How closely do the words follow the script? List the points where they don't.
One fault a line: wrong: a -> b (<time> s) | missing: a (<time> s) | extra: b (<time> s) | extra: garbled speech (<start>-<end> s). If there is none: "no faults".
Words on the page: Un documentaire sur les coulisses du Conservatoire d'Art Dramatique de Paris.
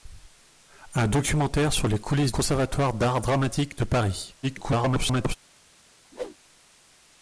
missing: du (2.3 s)
extra: garbled speech (4.4-5.4 s)